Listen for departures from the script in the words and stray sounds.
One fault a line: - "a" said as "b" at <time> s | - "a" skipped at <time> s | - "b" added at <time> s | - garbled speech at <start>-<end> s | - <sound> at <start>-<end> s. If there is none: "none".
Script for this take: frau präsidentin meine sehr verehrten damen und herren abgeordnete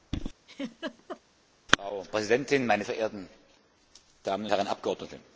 - laugh at 0.5-1.2 s
- "sehr" skipped at 2.8 s
- "und" skipped at 4.5 s